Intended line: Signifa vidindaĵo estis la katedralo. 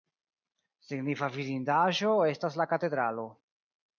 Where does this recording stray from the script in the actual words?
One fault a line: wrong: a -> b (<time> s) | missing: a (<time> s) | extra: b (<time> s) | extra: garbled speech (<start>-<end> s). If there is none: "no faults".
wrong: estis -> estas (2.3 s)